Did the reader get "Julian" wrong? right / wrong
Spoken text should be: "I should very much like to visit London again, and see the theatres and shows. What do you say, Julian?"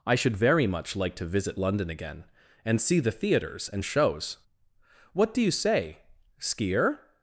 wrong